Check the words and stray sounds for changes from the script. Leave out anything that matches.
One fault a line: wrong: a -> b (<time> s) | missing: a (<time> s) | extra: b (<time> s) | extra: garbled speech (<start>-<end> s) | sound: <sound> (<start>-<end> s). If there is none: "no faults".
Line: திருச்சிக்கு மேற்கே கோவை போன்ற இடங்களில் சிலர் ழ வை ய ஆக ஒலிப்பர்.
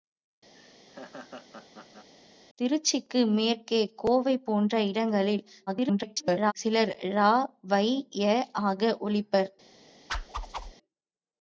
sound: laugh (0.5-2.1 s)
extra: garbled speech (5.7-6.5 s)
sound: whoosh (10.1-10.7 s)